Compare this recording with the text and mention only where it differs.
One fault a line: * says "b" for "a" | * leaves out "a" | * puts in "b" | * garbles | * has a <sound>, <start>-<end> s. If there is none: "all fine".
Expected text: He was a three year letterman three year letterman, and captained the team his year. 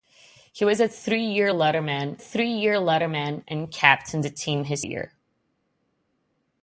all fine